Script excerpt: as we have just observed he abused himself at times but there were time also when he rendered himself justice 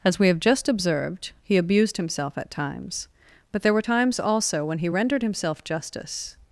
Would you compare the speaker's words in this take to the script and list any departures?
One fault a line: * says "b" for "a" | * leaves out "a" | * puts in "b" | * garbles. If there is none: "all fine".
* says "times" for "time"